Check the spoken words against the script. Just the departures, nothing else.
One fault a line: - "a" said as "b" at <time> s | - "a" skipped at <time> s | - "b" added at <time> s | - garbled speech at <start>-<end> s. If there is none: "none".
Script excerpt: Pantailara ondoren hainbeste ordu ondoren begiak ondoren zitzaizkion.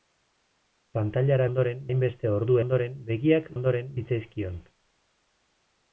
none